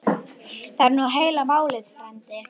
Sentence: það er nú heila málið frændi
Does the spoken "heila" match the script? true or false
true